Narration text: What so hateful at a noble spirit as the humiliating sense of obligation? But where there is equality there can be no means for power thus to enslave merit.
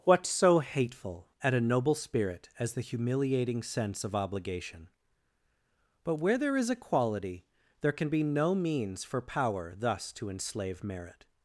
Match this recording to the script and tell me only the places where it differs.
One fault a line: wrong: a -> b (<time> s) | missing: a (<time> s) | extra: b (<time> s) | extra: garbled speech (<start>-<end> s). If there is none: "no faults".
no faults